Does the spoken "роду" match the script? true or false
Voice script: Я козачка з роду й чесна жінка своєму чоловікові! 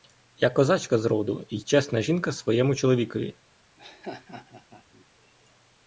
true